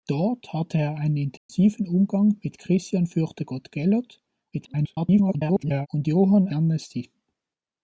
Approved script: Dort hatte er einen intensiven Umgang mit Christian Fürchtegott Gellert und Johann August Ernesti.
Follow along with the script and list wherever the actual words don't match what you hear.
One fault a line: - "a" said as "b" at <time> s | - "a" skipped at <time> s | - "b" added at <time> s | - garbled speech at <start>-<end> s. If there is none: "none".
- garbled speech at 4.5-5.9 s
- "August" skipped at 6.5 s